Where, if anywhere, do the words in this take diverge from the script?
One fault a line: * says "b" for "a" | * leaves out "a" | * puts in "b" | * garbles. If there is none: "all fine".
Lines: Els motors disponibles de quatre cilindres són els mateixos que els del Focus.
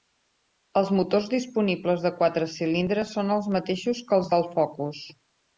all fine